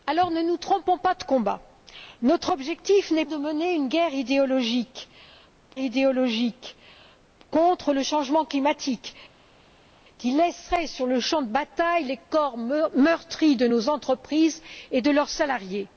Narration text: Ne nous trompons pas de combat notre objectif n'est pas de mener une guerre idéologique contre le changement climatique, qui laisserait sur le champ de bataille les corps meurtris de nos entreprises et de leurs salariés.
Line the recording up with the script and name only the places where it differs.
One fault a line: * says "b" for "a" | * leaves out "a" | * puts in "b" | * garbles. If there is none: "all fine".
* leaves out "pas"
* puts in "idéologique"